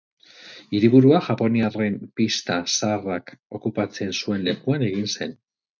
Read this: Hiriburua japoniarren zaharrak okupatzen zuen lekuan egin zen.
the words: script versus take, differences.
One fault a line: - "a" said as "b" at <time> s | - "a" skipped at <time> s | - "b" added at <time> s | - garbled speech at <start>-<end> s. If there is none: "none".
- "pista" added at 2.2 s